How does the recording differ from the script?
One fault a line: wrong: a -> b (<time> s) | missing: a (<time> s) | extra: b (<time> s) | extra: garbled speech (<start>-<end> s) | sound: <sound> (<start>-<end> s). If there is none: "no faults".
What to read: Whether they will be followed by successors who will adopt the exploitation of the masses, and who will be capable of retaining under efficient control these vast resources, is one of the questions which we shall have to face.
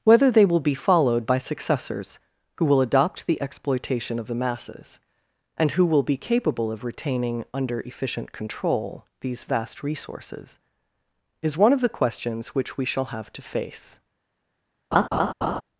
sound: laugh (14.9-15.6 s)